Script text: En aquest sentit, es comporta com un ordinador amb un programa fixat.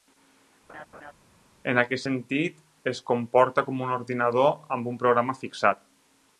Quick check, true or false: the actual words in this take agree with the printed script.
true